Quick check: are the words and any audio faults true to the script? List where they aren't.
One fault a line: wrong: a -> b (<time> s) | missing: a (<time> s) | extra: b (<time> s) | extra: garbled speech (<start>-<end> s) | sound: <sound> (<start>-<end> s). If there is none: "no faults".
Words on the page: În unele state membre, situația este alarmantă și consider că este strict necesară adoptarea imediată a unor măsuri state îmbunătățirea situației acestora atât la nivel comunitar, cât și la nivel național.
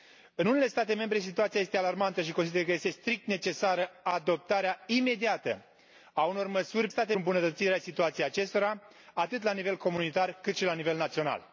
no faults